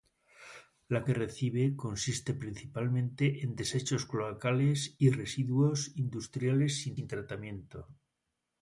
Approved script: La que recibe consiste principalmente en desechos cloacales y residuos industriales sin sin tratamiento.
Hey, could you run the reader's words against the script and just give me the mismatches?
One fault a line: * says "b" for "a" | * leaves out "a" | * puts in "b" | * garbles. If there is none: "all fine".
all fine